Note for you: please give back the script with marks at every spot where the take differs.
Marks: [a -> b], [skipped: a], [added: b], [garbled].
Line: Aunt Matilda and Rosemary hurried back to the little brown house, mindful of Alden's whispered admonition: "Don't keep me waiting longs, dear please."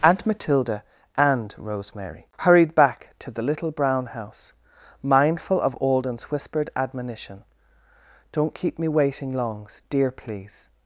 Aunt Matilda and Rosemary hurried back to the little brown house, mindful of Alden's whispered admonition: "Don't keep me waiting longs, dear please."